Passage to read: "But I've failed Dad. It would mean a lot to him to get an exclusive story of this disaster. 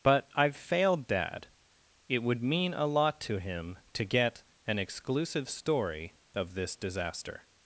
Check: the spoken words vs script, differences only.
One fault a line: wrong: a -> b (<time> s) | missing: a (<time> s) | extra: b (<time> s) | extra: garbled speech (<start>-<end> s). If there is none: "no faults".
no faults